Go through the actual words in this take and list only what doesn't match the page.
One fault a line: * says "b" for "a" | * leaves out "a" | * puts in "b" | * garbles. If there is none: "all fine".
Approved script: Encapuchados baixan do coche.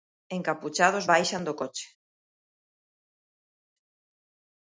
all fine